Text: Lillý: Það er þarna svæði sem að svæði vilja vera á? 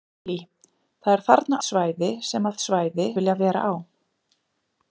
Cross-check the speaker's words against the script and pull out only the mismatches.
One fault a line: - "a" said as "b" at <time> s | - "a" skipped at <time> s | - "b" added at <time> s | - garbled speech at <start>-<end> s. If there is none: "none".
none